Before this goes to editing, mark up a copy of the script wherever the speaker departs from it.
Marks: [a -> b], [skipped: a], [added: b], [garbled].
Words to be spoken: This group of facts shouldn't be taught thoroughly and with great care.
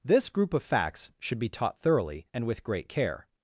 This group of facts [shouldn't -> should] be taught thoroughly and with great care.